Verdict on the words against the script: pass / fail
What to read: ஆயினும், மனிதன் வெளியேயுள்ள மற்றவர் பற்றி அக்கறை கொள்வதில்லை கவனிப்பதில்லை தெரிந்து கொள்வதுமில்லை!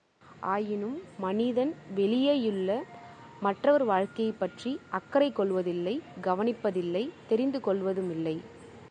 fail